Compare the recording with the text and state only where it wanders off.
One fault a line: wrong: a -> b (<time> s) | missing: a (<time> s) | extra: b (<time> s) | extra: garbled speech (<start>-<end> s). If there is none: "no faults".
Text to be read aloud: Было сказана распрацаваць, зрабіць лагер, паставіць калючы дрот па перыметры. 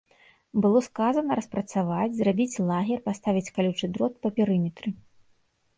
no faults